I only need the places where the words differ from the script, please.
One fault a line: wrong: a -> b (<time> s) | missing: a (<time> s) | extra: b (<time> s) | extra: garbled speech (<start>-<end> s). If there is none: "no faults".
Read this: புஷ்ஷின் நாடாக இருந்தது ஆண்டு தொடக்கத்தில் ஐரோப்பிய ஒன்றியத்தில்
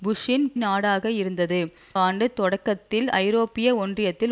no faults